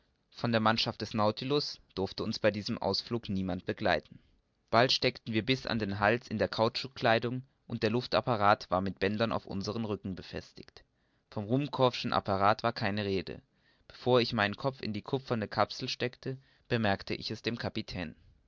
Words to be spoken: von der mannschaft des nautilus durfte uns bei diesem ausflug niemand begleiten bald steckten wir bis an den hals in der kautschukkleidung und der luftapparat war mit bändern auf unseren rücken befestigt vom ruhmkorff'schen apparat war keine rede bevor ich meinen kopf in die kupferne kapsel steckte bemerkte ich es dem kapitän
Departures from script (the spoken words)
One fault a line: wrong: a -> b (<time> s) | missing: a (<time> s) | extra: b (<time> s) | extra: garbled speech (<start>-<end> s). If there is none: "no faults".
no faults